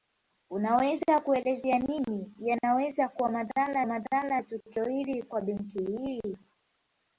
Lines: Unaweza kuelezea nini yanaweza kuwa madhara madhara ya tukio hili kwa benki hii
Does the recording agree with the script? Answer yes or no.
yes